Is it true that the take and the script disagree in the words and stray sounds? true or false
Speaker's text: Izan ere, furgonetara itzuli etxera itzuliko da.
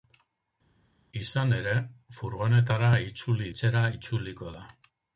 false